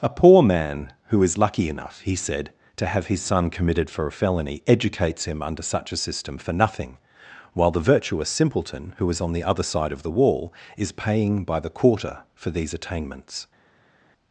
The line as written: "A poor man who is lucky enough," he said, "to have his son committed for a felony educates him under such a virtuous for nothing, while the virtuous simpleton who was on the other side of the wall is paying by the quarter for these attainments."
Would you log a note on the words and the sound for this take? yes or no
yes